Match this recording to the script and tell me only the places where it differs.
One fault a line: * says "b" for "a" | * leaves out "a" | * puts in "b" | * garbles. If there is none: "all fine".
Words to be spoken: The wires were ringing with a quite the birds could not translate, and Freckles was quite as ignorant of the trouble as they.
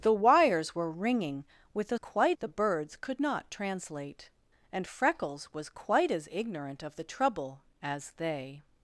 all fine